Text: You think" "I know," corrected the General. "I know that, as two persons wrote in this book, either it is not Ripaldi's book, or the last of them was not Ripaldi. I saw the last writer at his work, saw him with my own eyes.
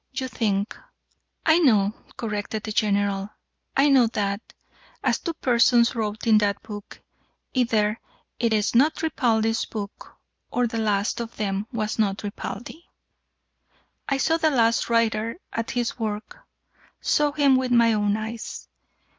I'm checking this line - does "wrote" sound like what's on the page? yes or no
yes